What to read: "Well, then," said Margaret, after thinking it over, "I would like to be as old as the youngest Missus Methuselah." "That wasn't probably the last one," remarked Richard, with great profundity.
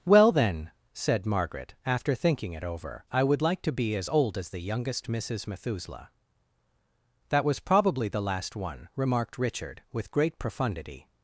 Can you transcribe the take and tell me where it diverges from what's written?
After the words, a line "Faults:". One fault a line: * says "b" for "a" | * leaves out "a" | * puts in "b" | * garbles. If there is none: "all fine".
"Well, then," said Margaret, after thinking it over, "I would like to be as old as the youngest Missus Methuselah." "That was probably the last one," remarked Richard, with great profundity.
Faults:
* says "was" for "wasn't"